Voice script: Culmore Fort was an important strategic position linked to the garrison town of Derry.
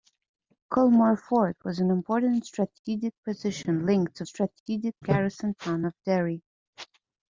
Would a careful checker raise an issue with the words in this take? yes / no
yes